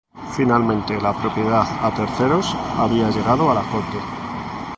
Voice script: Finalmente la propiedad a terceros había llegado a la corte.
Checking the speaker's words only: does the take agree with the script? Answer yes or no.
yes